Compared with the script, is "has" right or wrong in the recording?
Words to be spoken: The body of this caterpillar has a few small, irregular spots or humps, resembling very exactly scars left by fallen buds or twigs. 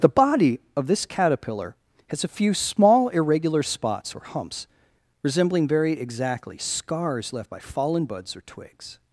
right